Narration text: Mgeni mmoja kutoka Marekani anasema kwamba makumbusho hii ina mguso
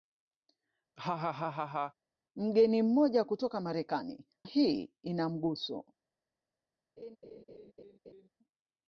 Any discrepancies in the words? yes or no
yes